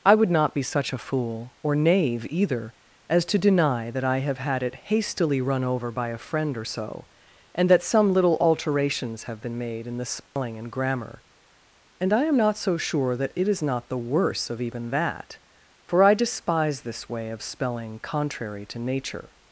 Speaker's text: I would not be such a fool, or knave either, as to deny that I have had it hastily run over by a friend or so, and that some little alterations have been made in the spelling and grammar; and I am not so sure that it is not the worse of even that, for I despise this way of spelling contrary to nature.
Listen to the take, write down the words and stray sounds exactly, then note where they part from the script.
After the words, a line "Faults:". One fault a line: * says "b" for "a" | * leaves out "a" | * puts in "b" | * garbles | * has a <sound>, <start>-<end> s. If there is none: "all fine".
I would not be such a fool, or knave either, as to deny that I have had it hastily run over by a friend or so, and that some little alterations have been made in the spelling and grammar; and I am not so sure that it is not the worse of even that, for I despise this way of spelling contrary to nature.
Faults:
* has a dropout, 10.3-10.4 s